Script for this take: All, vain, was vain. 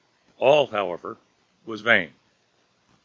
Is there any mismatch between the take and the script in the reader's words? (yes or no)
yes